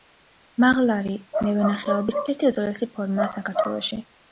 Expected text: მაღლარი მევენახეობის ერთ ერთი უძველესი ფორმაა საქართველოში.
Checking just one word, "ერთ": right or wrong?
wrong